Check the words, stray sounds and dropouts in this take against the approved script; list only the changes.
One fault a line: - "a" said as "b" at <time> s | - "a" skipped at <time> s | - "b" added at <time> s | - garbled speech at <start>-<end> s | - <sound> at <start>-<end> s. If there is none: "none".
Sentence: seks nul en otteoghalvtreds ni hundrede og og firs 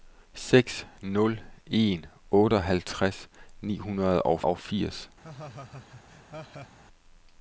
- laugh at 5.2-6.8 s